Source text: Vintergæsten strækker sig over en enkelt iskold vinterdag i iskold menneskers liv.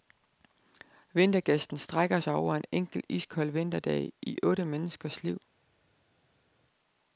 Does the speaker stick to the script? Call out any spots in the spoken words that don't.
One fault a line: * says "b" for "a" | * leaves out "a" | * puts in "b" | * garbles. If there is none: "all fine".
* says "otte" for "iskold"